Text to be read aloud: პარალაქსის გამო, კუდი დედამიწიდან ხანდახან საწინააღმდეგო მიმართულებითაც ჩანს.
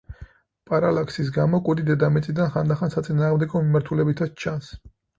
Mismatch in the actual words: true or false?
false